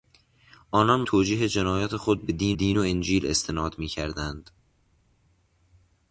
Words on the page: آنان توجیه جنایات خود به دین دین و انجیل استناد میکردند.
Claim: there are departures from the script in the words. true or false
false